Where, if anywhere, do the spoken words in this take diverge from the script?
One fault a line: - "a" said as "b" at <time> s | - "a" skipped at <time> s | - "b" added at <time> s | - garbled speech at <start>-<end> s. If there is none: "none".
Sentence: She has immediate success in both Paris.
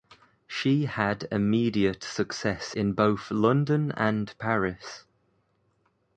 - "has" said as "had" at 0.8 s
- "London and" added at 3.3 s